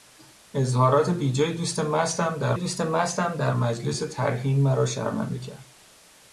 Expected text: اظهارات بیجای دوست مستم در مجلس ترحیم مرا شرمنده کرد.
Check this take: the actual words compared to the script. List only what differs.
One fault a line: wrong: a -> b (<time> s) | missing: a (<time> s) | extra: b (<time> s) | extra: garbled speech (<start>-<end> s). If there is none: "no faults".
extra: دوست مستم در (2.6 s)